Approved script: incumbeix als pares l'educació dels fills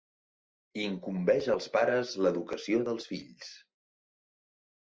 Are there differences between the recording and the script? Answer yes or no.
no